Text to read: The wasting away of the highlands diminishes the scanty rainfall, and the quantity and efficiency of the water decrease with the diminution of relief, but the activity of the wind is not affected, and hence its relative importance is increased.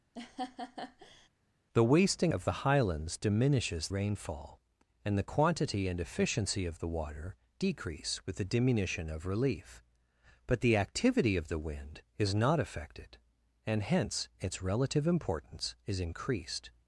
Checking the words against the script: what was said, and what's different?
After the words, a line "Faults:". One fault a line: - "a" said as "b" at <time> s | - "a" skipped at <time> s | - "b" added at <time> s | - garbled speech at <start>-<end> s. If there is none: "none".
The wasting of the highlands diminishes rainfall, and the quantity and efficiency of the water decrease with the diminution of relief, but the activity of the wind is not affected, and hence its relative importance is increased.
Faults:
- "away" skipped at 2.3 s
- "the scanty" skipped at 3.9 s